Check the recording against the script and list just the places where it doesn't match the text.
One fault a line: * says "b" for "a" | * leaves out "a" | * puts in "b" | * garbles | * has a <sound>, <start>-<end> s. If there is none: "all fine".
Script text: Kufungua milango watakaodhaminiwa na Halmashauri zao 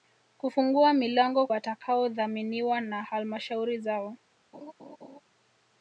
* has a laugh, 4.5-5.2 s